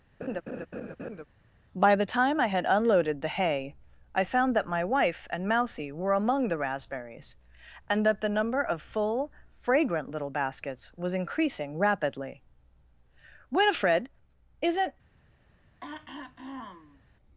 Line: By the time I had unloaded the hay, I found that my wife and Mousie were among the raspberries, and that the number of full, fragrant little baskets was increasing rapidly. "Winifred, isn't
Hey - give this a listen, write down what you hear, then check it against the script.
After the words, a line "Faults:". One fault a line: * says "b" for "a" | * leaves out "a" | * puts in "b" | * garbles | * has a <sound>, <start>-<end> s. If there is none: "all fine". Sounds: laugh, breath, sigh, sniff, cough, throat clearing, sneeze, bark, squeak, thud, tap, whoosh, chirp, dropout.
By the time I had unloaded the hay, I found that my wife and Mousie were among the raspberries, and that the number of full, fragrant little baskets was increasing rapidly. "Winifred, isn't
Faults:
* has a laugh, 0.2-1.2 s
* has a throat clearing, 15.8-17.0 s